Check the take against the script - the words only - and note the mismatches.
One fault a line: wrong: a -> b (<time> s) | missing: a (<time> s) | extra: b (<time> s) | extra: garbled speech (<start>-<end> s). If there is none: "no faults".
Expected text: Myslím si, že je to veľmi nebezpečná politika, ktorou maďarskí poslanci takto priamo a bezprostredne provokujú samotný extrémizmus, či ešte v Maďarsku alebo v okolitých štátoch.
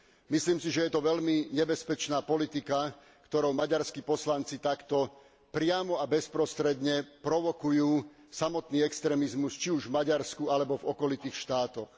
wrong: ešte -> už (9.7 s)